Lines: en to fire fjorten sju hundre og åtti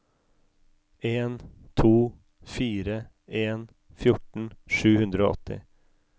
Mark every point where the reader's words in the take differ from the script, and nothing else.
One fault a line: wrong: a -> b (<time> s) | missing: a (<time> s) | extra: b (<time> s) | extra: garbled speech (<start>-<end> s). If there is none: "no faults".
extra: en (3.3 s)